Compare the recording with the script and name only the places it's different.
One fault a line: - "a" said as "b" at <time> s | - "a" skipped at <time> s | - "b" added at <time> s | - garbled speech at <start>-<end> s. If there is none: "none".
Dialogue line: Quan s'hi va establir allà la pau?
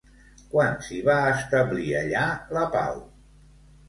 none